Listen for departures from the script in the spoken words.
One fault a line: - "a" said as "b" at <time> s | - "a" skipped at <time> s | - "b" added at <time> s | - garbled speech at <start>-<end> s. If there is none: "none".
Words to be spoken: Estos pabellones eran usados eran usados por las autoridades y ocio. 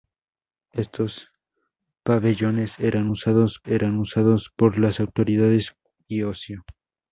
none